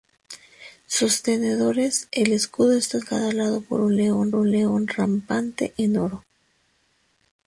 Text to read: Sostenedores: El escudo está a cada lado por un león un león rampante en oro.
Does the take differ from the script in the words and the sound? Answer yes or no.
no